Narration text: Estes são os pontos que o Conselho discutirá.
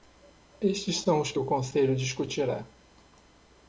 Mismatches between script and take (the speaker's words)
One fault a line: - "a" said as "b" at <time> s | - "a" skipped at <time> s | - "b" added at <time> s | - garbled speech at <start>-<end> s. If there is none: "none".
- "pontos" skipped at 1.3 s